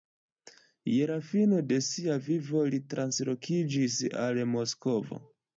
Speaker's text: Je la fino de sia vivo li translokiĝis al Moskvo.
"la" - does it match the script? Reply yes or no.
yes